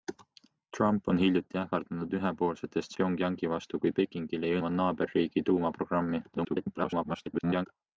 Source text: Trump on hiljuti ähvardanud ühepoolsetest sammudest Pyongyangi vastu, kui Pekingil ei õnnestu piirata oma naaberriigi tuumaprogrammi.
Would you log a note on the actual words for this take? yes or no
yes